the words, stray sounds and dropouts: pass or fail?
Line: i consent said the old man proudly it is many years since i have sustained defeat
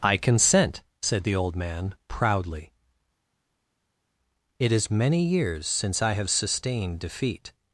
pass